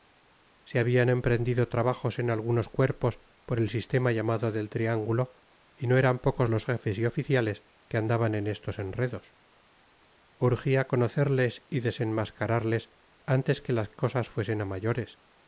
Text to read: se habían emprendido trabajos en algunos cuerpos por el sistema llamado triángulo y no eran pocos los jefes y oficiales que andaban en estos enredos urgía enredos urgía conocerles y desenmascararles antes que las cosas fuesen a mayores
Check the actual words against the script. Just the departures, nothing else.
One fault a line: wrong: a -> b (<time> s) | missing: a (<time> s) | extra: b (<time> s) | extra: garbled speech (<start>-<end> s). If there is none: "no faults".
extra: del (4.5 s)
missing: enredos urgía (10.9 s)